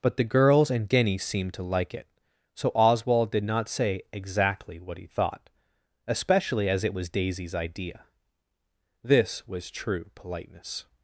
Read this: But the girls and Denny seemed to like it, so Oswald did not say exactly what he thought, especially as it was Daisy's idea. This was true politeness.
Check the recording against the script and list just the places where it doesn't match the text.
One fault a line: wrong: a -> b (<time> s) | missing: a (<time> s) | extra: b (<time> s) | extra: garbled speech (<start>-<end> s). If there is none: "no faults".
no faults